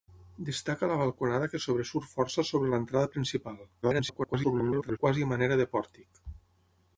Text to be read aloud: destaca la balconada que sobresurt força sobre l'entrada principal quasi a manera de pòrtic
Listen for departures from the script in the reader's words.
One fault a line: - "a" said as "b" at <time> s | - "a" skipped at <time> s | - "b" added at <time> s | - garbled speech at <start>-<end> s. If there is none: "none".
- garbled speech at 3.8-5.0 s